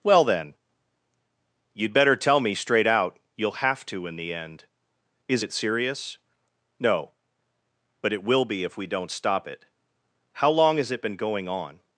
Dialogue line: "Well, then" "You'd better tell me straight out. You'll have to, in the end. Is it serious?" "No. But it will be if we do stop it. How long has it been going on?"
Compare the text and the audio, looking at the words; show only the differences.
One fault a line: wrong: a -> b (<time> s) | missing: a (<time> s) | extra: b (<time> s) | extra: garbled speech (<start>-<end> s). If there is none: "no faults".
wrong: do -> don't (8.9 s)